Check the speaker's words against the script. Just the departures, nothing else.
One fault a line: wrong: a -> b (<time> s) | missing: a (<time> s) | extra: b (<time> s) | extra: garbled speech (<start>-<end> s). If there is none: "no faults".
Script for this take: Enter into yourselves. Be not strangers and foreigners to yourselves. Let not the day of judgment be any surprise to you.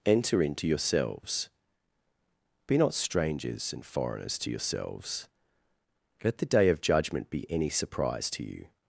missing: not (6.4 s)